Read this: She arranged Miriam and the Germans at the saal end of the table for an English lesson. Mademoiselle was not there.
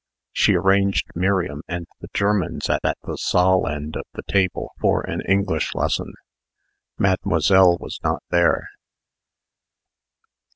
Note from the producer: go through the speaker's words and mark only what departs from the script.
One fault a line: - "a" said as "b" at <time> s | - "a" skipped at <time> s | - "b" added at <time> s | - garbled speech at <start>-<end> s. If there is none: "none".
- "at" added at 2.9 s